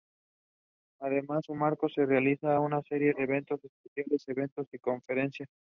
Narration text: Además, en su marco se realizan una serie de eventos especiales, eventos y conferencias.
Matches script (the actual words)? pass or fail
pass